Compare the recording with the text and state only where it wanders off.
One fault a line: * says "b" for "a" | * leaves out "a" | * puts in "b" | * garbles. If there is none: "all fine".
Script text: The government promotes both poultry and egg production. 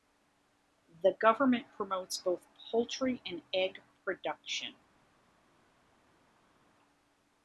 all fine